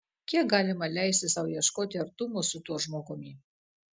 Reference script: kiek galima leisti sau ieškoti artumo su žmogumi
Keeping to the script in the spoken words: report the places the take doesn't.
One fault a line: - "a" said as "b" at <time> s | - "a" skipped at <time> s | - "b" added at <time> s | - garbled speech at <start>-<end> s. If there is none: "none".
- "tuo" added at 2.7 s